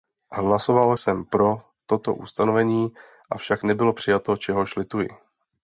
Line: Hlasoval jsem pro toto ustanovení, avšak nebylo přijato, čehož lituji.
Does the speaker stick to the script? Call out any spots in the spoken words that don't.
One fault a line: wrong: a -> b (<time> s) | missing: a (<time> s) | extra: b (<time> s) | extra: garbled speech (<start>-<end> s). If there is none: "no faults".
no faults